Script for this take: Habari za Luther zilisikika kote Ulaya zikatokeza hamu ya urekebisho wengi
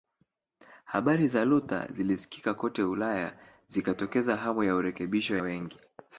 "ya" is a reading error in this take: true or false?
false